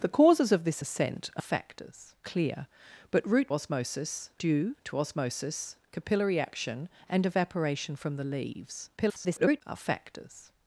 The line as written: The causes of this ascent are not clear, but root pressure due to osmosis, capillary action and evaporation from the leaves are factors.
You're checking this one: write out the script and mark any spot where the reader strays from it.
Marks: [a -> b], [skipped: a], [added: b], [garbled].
The causes of this ascent are [not -> factors] clear, but root [pressure -> osmosis] due to osmosis, capillary action and evaporation from the leaves [garbled] are factors.